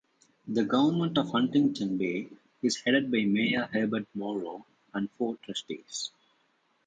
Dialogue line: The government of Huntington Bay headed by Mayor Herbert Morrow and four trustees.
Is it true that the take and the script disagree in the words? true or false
true